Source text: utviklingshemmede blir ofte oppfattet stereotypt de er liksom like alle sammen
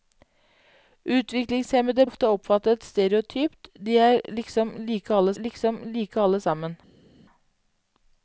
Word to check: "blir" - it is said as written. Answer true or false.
false